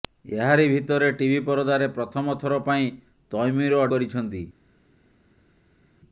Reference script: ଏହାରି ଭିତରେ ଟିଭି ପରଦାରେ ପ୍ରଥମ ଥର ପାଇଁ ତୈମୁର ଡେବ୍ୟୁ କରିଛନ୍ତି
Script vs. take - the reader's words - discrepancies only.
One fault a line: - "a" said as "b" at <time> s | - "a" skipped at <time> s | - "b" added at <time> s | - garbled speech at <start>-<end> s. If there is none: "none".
- "ଡେବ୍ୟୁ" skipped at 3.8 s